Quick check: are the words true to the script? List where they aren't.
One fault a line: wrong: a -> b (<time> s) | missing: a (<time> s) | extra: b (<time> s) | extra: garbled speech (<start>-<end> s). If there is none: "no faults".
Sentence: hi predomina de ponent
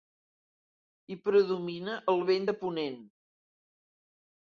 extra: el vent (2.1 s)